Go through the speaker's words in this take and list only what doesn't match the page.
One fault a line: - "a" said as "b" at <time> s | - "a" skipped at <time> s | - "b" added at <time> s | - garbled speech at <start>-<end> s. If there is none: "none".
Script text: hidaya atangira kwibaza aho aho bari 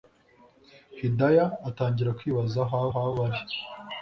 none